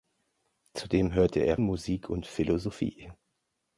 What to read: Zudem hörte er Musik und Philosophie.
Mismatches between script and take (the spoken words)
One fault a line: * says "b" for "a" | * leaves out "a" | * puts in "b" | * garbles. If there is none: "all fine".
all fine